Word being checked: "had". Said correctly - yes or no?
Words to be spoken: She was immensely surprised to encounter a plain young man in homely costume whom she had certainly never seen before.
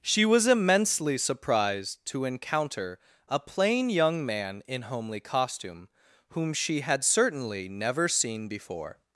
yes